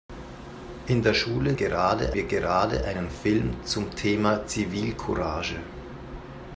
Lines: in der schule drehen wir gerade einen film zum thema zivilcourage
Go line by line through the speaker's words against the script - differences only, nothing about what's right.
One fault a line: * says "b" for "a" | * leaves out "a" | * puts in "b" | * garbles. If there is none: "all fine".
* says "gerade" for "drehen"